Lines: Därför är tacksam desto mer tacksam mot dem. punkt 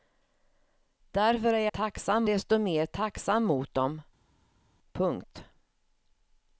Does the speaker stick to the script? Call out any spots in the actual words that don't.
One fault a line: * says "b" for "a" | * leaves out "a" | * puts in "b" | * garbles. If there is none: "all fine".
all fine